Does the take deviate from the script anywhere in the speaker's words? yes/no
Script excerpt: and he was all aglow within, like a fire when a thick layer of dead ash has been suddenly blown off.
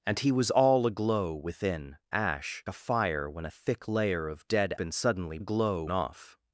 yes